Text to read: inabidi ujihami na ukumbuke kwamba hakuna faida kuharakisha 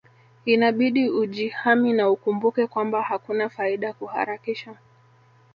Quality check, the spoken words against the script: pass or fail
pass